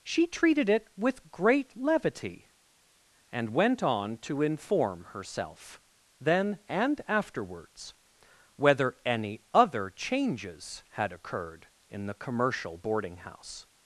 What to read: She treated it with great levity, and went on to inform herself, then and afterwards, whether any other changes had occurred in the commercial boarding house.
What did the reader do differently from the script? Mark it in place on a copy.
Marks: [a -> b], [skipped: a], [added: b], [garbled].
She treated it with great levity, and went on to inform herself, then and afterwards, whether any other changes had occurred in the commercial boarding house.